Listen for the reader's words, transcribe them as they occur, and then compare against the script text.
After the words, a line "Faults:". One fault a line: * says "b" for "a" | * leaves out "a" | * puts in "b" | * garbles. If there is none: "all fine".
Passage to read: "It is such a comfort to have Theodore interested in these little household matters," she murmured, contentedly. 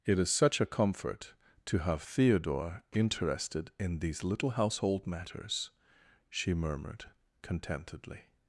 "It is such a comfort to have Theodore interested in these little household matters," she murmured, contentedly.
Faults:
all fine